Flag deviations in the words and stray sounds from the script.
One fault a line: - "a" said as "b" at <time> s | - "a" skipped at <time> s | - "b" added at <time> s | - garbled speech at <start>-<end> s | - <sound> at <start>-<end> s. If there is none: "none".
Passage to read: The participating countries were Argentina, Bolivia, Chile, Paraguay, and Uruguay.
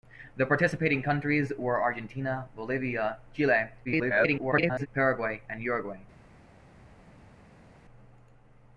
- garbled speech at 3.8-4.9 s